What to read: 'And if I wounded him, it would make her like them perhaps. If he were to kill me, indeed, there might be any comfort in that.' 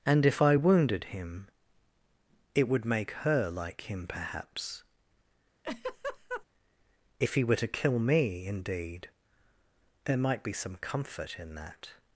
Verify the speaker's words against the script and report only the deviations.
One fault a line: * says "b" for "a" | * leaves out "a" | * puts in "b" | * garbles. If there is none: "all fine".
* says "him" for "them"
* says "some" for "any"